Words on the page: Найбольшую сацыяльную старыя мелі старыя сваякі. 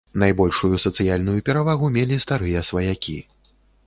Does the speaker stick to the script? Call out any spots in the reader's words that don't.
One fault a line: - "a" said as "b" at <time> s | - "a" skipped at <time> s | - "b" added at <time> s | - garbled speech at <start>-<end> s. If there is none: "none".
- "старыя" said as "перавагу" at 1.5 s